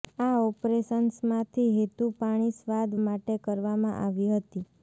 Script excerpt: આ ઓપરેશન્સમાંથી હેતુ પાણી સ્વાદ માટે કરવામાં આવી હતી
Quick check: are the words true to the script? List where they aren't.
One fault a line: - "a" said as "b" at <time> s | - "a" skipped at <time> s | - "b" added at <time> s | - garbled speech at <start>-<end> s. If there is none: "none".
none